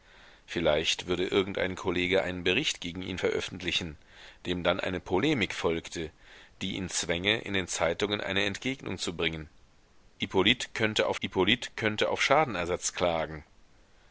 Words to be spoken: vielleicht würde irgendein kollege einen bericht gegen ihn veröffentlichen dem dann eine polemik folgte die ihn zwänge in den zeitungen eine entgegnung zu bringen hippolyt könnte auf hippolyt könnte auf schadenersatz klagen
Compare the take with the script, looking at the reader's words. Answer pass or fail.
pass